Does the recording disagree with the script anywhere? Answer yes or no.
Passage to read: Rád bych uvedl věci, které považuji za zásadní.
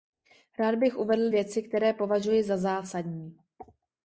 no